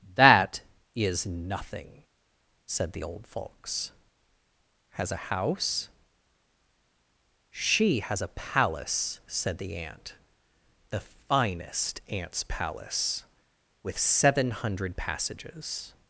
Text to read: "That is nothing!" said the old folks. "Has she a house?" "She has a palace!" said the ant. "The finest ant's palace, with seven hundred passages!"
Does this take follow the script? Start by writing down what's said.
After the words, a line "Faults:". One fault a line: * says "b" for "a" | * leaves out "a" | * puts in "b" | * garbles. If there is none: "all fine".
"That is nothing!" said the old folks. "Has a house?" "She has a palace!" said the ant. "The finest ant's palace, with seven hundred passages!"
Faults:
* leaves out "she"